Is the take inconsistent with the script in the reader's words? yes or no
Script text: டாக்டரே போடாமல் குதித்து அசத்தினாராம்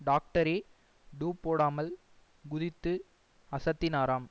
yes